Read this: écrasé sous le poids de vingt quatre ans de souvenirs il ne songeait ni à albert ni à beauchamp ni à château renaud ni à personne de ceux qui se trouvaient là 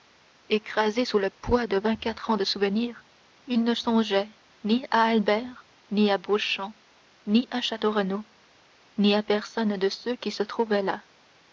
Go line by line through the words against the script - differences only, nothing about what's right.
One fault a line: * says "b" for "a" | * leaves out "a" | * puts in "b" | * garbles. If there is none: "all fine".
all fine